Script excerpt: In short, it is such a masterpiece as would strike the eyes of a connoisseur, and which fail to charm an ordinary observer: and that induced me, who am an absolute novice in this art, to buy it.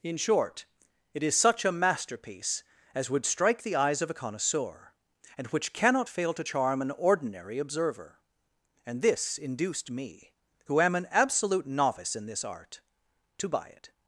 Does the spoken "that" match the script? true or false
false